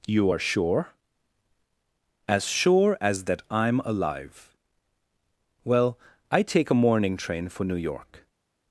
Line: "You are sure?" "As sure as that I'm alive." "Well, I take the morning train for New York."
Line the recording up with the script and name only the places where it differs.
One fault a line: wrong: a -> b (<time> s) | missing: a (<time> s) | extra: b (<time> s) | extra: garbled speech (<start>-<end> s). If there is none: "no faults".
wrong: the -> a (6.7 s)